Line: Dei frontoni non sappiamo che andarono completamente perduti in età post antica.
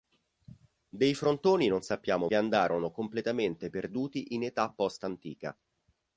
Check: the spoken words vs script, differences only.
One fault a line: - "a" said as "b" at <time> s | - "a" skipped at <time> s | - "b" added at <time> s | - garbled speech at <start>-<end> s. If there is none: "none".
none